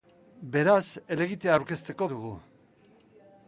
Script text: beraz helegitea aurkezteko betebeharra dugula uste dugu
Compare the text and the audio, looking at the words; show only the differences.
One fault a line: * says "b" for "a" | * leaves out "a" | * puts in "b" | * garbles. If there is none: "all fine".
* leaves out "betebeharra dugula uste"